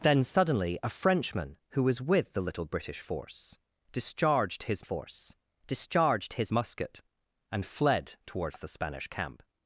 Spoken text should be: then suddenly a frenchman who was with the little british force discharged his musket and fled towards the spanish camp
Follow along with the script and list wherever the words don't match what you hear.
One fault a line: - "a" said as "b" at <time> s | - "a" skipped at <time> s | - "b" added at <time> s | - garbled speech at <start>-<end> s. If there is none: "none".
- "force discharged his" added at 4.8 s